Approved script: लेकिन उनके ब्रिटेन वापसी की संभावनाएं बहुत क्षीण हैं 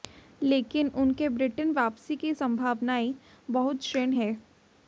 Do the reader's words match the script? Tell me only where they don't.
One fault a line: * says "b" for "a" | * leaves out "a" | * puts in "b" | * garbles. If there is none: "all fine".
all fine